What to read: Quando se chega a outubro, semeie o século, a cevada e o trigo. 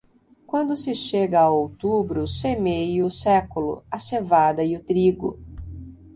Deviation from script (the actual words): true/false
false